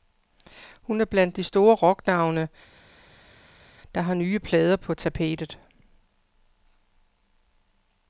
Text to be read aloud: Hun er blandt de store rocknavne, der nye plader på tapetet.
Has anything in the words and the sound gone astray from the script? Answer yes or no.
yes